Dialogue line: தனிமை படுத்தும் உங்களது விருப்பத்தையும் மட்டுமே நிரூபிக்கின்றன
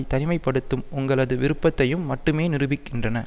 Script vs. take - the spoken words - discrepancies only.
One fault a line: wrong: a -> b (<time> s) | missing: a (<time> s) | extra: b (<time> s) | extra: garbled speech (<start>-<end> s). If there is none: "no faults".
no faults